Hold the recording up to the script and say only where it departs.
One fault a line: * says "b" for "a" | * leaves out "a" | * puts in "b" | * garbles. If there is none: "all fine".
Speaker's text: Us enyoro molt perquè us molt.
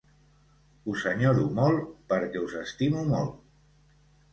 * puts in "estimo"